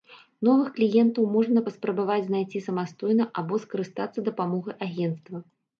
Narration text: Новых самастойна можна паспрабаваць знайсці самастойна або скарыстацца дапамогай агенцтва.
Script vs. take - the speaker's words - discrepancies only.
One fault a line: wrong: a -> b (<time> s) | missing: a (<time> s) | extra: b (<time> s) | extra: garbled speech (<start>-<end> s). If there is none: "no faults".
wrong: самастойна -> кліентаў (0.8 s)